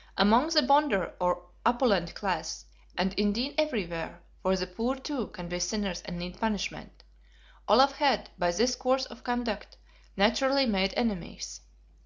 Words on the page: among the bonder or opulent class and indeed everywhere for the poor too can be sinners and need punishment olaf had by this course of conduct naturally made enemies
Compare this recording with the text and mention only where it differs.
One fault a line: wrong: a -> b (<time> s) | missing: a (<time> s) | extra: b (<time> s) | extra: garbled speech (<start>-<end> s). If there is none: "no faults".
no faults